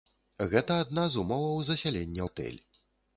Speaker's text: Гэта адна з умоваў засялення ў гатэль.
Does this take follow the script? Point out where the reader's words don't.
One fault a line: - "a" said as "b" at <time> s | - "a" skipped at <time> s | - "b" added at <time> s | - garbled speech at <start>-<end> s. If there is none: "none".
- "ў" skipped at 2.2 s